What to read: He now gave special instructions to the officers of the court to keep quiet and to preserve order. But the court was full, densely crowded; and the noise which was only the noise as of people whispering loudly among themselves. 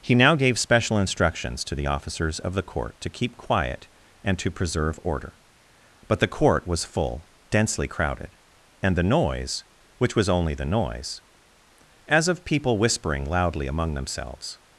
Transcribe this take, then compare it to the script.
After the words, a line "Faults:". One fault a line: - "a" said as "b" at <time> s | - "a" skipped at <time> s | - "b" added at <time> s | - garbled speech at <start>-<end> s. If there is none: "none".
He now gave special instructions to the officers of the court to keep quiet and to preserve order. But the court was full, densely crowded; and the noise which was only the noise as of people whispering loudly among themselves.
Faults:
none